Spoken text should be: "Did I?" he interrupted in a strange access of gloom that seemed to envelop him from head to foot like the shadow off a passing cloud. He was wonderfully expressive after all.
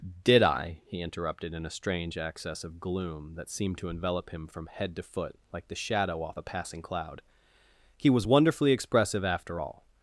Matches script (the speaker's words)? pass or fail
pass